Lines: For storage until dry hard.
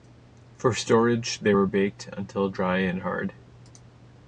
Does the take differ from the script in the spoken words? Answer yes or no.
yes